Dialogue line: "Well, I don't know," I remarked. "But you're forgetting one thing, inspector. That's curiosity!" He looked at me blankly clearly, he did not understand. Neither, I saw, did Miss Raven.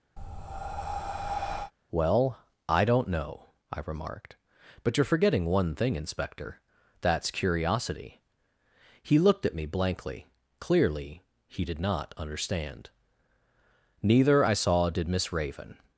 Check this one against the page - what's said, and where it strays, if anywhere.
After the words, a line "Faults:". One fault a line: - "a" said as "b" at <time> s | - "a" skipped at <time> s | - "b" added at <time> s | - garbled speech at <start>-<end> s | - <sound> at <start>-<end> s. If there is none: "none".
"Well, I don't know," I remarked. "But you're forgetting one thing, inspector. That's curiosity!" He looked at me blankly clearly, he did not understand. Neither, I saw, did Miss Raven.
Faults:
- breath at 0.2-1.7 s